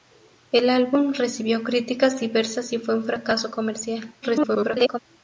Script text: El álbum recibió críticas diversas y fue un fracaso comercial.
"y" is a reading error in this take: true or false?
false